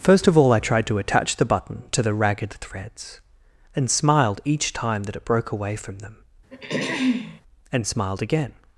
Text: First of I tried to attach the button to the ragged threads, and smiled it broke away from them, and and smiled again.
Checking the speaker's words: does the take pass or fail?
fail